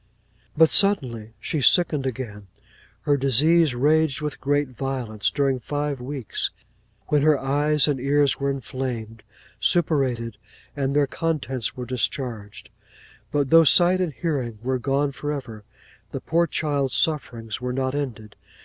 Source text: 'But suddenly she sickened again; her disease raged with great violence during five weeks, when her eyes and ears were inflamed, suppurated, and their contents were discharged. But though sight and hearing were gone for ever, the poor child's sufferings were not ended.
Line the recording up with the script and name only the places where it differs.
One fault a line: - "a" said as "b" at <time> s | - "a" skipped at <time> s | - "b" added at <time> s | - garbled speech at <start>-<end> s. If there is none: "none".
none